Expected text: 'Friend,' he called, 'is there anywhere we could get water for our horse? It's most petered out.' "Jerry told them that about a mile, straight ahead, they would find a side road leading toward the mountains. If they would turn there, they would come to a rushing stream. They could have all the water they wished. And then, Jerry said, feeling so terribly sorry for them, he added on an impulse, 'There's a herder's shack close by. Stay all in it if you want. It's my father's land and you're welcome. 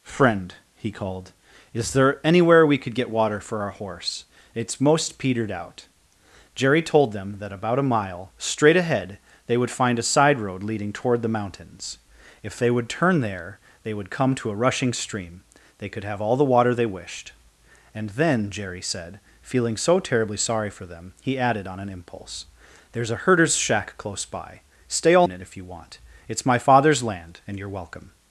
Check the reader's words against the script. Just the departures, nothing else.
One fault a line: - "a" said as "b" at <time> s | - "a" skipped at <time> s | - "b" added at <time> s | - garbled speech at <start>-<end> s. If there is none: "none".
none